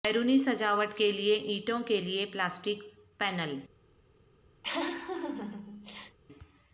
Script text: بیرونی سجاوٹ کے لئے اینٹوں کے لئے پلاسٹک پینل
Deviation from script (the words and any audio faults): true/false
true